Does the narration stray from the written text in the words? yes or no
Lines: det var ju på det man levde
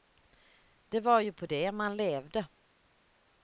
no